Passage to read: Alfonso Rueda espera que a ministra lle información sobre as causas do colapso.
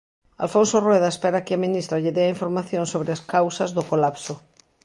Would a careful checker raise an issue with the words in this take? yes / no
yes